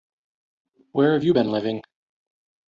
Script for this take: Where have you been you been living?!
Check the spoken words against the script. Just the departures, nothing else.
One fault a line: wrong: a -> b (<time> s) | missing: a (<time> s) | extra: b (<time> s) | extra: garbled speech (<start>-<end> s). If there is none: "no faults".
missing: you been (1.5 s)